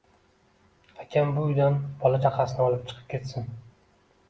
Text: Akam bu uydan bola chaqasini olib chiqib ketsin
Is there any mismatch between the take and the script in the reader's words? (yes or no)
no